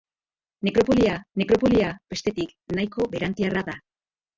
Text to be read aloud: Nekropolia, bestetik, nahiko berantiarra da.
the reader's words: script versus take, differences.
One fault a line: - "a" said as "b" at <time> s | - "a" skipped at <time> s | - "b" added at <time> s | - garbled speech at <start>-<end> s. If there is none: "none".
- "nekropolia" added at 1.4 s